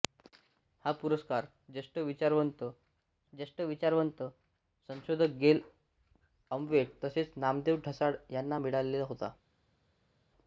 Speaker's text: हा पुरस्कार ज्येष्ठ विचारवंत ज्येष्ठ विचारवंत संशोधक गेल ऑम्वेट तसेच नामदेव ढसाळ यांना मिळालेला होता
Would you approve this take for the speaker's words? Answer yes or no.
yes